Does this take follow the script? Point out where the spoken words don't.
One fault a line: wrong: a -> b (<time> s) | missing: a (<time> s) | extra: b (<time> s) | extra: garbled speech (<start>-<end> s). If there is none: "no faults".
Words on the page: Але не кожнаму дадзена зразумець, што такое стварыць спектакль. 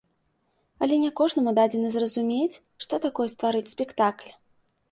no faults